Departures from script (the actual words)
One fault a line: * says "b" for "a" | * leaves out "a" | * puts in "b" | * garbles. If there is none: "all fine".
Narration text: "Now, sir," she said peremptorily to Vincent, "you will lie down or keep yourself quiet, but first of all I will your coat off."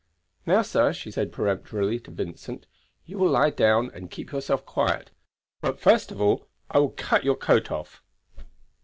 * says "and" for "or"
* puts in "cut"